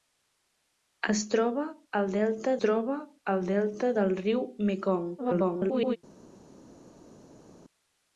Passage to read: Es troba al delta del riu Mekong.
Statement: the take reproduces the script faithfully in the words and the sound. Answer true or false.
false